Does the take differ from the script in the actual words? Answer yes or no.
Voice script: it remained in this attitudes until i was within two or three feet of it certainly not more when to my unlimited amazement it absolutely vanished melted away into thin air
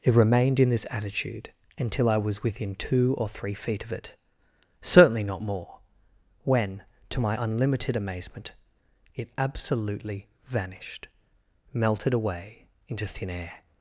yes